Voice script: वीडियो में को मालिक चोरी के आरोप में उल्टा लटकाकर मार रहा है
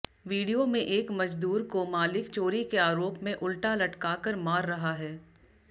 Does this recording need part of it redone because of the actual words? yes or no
yes